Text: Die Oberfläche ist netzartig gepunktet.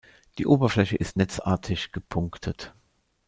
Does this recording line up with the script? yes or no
yes